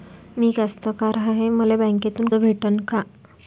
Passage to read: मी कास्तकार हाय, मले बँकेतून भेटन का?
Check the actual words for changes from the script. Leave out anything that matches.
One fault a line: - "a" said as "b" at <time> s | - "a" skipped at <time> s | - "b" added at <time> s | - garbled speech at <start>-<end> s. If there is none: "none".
none